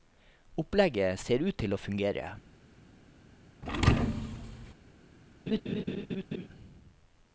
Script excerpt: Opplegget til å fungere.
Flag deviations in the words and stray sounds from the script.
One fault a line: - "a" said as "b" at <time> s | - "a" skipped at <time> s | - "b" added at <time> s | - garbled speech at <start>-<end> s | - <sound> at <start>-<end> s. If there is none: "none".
- "ser ut" added at 1.2 s
- thud at 3.6-4.7 s
- laugh at 5.5-6.5 s